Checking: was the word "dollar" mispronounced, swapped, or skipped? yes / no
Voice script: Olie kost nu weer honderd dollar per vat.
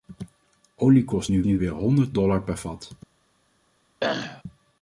no